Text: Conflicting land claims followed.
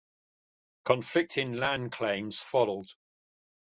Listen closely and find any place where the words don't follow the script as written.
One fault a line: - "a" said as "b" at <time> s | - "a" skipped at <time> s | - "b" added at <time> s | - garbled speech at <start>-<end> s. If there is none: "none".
none